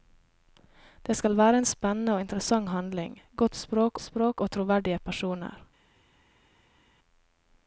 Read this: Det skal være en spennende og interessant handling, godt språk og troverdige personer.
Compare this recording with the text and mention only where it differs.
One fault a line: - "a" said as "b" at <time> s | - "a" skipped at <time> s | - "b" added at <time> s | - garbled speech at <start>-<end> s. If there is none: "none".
- "språk" added at 4.0 s